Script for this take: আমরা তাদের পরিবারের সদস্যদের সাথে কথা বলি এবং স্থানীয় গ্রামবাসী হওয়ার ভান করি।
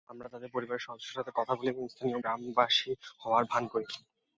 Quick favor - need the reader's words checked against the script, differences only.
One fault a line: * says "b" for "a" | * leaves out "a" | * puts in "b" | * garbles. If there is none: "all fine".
all fine